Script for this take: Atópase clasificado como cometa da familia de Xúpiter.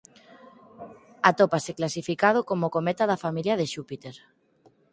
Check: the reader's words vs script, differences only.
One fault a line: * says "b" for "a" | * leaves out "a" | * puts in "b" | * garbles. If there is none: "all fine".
all fine